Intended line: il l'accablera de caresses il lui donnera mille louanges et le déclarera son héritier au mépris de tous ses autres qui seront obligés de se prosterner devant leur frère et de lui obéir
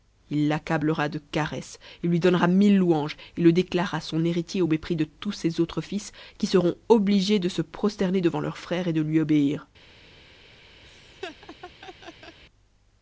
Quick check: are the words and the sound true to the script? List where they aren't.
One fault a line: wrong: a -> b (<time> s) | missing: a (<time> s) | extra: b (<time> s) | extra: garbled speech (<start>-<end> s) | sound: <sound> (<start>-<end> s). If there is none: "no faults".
extra: fils (5.8 s)
sound: laugh (10.8-12.4 s)